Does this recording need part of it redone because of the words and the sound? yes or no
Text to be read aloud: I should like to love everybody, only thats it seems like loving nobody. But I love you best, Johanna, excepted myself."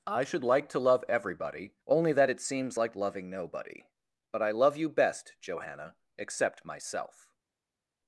yes